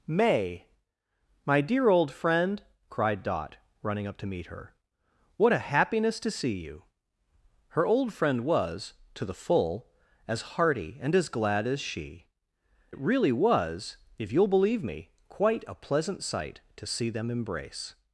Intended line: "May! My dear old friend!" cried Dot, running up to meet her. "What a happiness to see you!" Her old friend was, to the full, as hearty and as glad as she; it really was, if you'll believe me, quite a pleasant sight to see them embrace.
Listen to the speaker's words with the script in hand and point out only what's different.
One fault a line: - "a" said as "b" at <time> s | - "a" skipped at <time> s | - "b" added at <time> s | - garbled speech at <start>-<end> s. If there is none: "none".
none